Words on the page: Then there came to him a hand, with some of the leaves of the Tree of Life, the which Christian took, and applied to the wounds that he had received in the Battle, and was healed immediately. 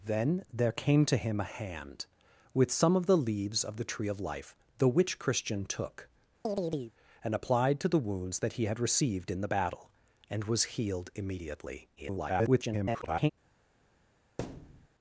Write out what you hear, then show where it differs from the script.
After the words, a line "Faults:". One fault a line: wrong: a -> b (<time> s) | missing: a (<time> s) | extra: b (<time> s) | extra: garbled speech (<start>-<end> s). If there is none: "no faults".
Then there came to him a hand, with some of the leaves of the Tree of Life, the which Christian took, and applied to the wounds that he had received in the Battle, and was healed immediately. [garbled]
Faults:
extra: garbled speech (12.0-13.3 s)